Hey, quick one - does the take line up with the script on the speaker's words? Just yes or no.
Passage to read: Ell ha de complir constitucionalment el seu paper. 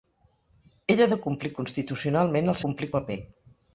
no